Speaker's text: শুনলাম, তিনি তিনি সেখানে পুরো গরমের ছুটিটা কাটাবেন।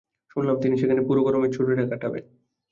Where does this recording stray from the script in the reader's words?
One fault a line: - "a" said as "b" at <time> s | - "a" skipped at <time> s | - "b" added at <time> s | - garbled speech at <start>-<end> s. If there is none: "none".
- "তিনি" skipped at 0.8 s